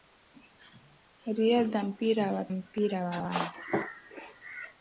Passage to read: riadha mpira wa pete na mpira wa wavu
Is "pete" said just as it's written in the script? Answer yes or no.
no